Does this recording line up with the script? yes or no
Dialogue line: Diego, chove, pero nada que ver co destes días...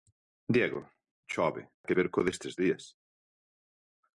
no